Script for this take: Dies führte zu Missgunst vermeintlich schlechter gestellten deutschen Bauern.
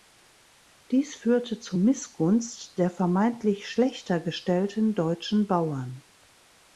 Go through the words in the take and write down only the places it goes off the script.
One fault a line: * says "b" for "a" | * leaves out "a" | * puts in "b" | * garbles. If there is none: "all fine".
* puts in "der"